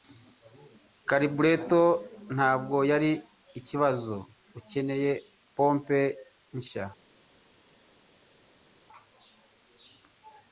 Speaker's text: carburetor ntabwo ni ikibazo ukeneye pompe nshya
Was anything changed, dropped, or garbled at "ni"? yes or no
yes